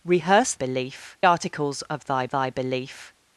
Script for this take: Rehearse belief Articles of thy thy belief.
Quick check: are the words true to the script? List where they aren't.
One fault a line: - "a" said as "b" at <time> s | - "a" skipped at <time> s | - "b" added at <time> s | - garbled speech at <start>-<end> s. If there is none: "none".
none